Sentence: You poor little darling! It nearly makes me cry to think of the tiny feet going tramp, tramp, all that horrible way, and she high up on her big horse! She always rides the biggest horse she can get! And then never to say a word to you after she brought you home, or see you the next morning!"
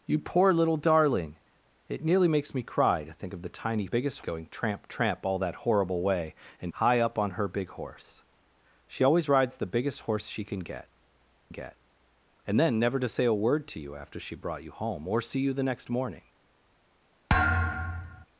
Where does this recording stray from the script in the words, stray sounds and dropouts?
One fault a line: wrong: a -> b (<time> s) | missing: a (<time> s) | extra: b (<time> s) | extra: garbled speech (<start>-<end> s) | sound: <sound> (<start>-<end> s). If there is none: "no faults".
wrong: feet -> biggest (3.8 s)
missing: she (6.7 s)
extra: get (11.5 s)
sound: thud (17.3-18.3 s)